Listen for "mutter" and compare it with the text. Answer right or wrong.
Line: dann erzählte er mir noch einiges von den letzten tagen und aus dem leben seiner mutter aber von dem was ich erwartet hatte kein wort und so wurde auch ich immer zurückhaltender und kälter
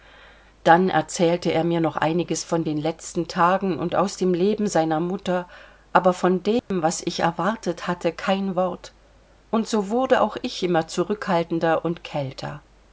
right